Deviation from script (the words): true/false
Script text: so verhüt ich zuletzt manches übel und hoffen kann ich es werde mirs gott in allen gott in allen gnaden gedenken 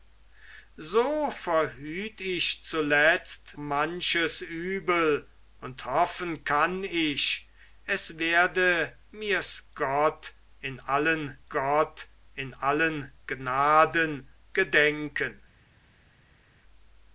false